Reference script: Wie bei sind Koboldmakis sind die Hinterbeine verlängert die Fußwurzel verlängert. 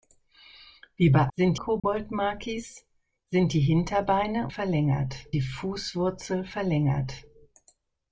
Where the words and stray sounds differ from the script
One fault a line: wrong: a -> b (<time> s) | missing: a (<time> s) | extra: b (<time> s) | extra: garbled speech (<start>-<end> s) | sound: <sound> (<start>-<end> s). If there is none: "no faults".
sound: dropout (1.8-1.8 s)